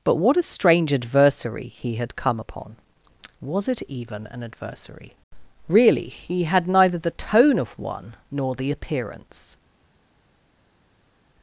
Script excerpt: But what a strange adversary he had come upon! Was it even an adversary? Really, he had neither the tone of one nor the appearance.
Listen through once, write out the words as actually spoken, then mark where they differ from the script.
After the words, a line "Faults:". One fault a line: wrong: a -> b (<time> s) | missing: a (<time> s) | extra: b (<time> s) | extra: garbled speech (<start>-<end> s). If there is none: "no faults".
But what a strange adversary he had come upon! Was it even an adversary? Really, he had neither the tone of one nor the appearance.
Faults:
no faults